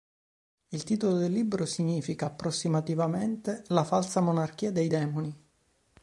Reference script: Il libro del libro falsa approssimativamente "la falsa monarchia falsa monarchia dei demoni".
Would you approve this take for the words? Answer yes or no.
no